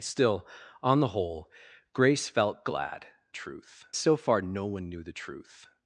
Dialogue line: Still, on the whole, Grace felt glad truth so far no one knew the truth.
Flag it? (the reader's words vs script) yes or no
no